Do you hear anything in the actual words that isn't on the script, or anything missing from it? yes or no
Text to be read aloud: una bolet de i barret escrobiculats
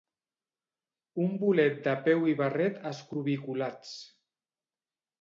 yes